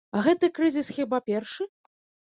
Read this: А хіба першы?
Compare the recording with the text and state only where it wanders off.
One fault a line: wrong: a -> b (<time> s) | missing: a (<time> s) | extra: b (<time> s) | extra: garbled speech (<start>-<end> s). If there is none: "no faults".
extra: гэты крызіс (0.3 s)